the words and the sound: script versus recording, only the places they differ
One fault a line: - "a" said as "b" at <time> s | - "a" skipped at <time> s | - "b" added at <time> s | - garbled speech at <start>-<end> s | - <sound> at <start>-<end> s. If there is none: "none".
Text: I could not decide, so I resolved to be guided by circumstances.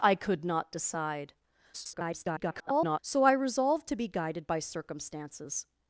- garbled speech at 1.7-3.0 s